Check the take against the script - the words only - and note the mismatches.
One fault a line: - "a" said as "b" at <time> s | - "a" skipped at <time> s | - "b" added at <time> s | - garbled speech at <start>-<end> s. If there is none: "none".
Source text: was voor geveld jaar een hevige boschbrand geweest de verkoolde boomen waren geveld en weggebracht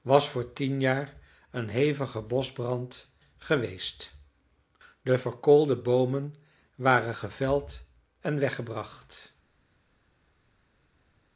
- "geveld" said as "tien" at 0.5 s